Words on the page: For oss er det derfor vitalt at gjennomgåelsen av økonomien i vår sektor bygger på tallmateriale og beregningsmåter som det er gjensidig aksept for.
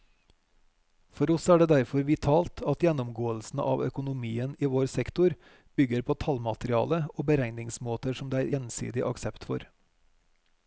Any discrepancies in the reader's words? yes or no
no